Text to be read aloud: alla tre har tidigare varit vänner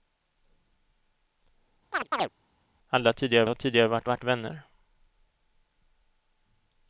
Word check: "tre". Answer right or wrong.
wrong